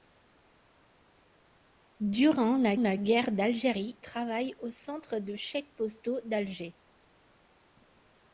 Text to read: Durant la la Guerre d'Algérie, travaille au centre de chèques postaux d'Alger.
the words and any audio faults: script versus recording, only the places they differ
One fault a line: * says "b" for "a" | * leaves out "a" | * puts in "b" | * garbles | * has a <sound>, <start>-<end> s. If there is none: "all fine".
all fine